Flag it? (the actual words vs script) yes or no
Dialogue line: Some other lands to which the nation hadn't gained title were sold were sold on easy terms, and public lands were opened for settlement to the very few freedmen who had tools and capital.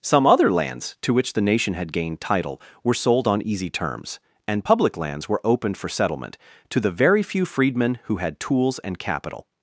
yes